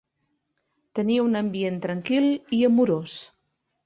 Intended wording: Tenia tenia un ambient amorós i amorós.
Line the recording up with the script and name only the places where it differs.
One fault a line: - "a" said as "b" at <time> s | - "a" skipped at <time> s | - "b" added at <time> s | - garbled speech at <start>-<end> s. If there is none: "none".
- "tenia" skipped at 1.2 s
- "amorós" said as "tranquil" at 1.8 s